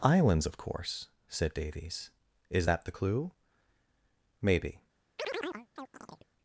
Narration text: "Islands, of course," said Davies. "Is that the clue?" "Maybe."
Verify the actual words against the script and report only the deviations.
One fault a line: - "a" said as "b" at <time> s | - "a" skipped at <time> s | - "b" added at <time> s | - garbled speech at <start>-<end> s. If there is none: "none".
none